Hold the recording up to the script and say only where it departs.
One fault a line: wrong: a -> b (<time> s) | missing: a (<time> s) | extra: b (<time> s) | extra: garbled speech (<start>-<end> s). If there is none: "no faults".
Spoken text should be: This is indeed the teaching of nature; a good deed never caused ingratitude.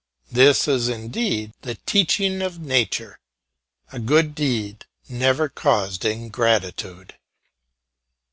no faults